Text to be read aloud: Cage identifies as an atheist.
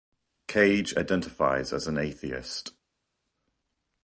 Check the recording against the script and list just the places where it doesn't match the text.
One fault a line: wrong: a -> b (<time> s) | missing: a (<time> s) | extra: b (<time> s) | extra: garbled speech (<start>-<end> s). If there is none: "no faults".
no faults